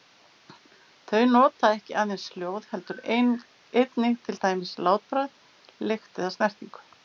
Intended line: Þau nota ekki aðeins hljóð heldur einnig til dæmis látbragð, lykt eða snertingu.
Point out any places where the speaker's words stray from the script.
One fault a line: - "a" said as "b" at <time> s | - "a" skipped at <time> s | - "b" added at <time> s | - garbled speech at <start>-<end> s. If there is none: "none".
none